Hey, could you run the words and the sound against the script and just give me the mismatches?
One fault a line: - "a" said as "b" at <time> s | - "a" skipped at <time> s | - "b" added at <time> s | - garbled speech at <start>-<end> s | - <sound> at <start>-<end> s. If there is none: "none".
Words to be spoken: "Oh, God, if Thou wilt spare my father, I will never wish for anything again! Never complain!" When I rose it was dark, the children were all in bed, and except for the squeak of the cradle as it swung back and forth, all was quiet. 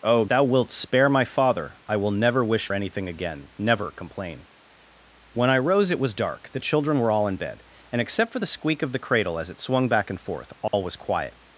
- "God if" skipped at 0.2 s
- "for" skipped at 2.7 s
- dropout at 10.7-10.7 s